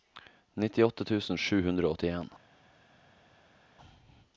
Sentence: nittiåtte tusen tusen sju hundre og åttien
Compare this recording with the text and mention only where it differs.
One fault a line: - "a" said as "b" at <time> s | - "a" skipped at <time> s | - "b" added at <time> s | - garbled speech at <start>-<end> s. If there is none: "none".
- "tusen" skipped at 1.4 s